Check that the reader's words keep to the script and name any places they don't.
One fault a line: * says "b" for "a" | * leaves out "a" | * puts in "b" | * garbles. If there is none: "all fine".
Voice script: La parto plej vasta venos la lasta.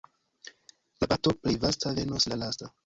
all fine